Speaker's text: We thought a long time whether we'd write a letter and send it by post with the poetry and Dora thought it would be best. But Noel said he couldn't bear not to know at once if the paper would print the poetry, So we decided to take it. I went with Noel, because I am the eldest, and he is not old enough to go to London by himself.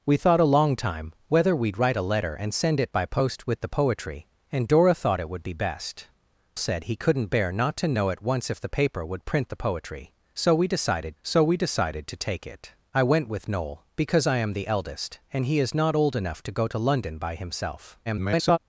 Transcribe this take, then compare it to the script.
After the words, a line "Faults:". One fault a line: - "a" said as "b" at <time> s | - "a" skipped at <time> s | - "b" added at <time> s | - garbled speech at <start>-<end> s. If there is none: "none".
We thought a long time whether we'd write a letter and send it by post with the poetry and Dora thought it would be best. Said he couldn't bear not to know at once if the paper would print the poetry, So we decided So we decided to take it. I went with Noel, because I am the eldest, and he is not old enough to go to London by himself. [garbled]
Faults:
- "But Noel" skipped at 6.1 s
- "So we decided" added at 11.2 s
- garbled speech at 18.1-18.6 s